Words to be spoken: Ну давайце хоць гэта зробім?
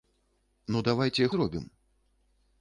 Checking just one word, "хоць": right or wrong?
wrong